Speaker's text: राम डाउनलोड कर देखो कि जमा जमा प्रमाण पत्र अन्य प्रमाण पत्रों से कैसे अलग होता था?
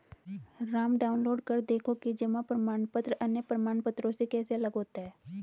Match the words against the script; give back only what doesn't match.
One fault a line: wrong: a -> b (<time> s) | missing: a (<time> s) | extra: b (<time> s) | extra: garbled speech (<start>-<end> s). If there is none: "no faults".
missing: जमा (2.4 s)
wrong: था -> है (5.0 s)